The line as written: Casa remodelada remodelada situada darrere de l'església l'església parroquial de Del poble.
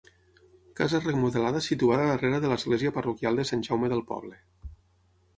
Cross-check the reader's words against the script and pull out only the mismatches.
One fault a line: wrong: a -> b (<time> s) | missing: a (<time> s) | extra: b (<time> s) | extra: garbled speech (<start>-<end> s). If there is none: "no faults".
missing: remodelada (1.6 s)
missing: l'església (2.9 s)
extra: Sant Jaume (3.5 s)